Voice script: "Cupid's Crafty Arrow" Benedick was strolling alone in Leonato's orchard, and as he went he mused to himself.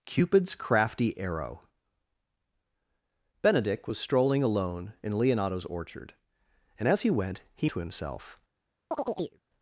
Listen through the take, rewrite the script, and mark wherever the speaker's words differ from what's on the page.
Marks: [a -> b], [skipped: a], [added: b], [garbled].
"Cupid's Crafty Arrow" Benedick was strolling alone in Leonato's orchard, and as he went he [skipped: mused] to himself.